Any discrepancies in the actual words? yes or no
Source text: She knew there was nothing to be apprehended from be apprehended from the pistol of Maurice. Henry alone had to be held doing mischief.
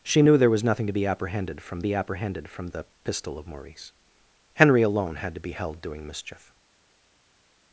no